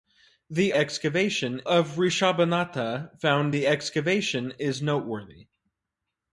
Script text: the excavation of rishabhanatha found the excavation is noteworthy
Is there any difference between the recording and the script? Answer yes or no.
no